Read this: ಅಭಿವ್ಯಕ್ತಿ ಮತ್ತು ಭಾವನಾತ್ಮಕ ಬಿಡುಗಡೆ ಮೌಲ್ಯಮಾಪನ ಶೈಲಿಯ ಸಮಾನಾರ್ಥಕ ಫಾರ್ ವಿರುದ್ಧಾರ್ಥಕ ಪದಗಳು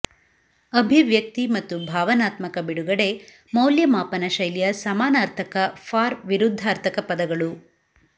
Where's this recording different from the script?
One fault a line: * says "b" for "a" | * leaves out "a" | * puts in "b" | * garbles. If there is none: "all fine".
all fine